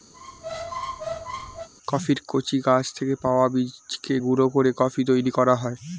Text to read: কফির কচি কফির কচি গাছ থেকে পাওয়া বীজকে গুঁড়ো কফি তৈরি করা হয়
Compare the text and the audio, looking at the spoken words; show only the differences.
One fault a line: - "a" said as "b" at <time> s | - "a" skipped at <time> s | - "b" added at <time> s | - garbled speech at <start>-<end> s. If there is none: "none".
- "কফির কচি" skipped at 2.6 s
- "করে" added at 4.5 s